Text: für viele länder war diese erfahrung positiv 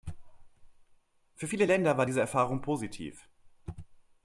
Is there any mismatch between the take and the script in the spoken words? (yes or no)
no